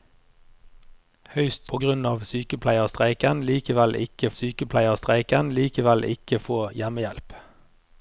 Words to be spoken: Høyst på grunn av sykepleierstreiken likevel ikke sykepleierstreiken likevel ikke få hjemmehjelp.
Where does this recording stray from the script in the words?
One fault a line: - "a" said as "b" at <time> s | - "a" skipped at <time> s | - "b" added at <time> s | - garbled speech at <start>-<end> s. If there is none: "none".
none